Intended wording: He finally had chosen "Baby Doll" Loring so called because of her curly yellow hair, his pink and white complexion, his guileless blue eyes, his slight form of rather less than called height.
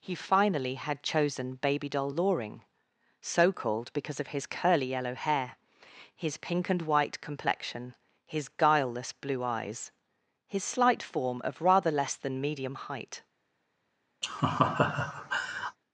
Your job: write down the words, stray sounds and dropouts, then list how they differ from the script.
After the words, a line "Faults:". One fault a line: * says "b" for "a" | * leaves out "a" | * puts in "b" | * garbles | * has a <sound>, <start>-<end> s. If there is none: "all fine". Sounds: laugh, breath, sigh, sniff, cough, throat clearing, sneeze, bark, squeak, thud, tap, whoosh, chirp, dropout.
He finally had chosen "Baby Doll" Loring so called because of his curly yellow hair, his pink and white complexion, his guileless blue eyes, his slight form of rather less than medium height.
Faults:
* says "his" for "her"
* says "medium" for "called"
* has a laugh, 14.2-15.8 s